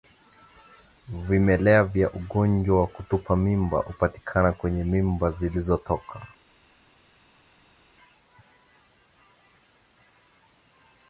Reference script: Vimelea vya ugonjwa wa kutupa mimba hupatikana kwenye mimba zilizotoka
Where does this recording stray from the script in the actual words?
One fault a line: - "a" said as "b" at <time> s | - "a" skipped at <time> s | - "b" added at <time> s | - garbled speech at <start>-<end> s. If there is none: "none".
none